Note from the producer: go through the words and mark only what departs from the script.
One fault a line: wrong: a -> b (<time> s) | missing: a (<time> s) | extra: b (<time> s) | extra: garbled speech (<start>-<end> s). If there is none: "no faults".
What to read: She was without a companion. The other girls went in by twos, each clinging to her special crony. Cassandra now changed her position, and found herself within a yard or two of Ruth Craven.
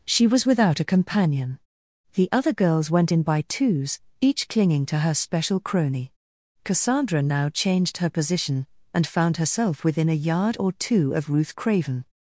no faults